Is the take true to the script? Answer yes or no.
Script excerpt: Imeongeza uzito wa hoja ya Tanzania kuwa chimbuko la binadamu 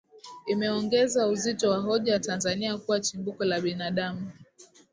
yes